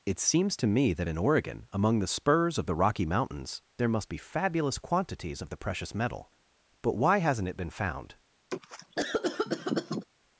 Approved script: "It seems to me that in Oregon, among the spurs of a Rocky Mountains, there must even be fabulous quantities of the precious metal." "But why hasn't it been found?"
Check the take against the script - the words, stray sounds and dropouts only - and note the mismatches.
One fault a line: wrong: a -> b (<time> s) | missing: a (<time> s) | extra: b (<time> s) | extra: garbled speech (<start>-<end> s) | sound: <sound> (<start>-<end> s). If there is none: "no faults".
wrong: a -> the (2.7 s)
missing: even (4.1 s)
sound: cough (8.5-10.1 s)